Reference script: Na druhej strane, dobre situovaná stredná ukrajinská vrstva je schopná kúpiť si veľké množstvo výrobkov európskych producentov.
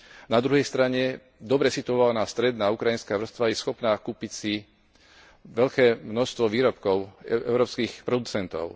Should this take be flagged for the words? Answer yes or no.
no